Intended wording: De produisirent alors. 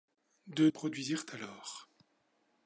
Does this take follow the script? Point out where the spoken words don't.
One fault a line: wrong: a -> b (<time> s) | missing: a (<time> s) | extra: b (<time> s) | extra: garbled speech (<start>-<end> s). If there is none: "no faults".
no faults